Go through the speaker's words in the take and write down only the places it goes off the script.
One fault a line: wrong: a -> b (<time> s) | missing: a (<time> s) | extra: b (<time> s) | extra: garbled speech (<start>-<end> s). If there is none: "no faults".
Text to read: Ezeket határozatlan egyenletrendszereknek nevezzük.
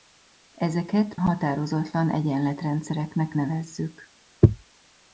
no faults